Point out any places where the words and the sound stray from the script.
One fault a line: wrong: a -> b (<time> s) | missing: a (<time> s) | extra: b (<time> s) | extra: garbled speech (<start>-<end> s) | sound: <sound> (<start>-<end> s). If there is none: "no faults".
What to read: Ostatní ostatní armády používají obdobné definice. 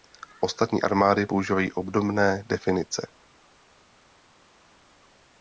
missing: ostatní (0.8 s)